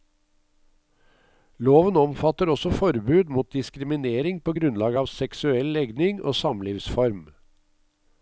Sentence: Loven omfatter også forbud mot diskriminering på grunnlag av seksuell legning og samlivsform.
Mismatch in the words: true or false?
false